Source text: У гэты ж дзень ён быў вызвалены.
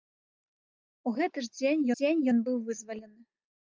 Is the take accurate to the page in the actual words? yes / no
no